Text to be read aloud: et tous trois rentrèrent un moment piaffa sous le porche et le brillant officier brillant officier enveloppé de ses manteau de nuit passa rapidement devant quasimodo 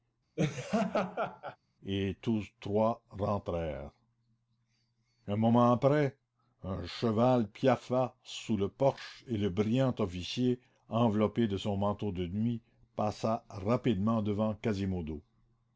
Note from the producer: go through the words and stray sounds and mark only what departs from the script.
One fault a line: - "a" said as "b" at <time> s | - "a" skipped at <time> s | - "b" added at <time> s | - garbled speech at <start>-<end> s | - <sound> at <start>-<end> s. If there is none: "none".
- laugh at 0.4-1.6 s
- "après un cheval" added at 5.7 s
- "brillant officier" skipped at 10.6 s
- "ses" said as "son" at 11.6 s